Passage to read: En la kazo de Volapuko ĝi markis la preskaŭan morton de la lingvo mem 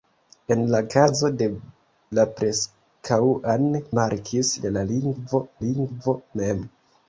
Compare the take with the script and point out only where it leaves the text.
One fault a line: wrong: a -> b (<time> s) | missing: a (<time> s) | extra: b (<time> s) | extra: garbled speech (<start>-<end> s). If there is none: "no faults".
missing: Volapuko ĝi markis (1.5 s)
wrong: morton -> markis (4.0 s)
extra: lingvo (5.7 s)